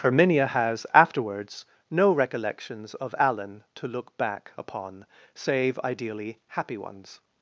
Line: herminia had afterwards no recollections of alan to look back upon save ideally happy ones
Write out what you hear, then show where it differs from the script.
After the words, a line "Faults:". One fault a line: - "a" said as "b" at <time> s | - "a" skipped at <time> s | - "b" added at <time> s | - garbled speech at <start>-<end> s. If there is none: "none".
herminia has afterwards no recollections of alan to look back upon save ideally happy ones
Faults:
- "had" said as "has" at 0.5 s